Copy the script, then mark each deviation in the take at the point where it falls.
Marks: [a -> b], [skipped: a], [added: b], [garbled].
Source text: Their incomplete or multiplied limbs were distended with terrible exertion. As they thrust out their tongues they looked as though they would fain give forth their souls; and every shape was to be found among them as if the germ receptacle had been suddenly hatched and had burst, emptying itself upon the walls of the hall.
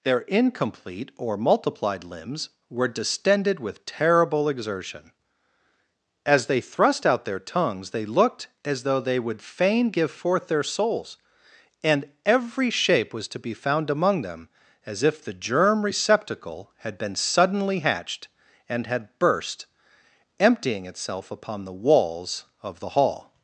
Their incomplete or multiplied limbs were distended with terrible exertion. As they thrust out their tongues they looked as though they would fain give forth their souls; and every shape was to be found among them as if the germ receptacle had been suddenly hatched and had burst, emptying itself upon the walls of the hall.